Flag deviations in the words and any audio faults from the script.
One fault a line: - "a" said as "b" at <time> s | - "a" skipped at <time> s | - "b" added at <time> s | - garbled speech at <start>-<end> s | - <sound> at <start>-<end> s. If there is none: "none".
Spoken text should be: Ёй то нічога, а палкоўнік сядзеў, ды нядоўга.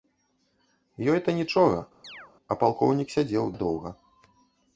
- chirp at 2.0-2.3 s
- "ды" skipped at 3.4 s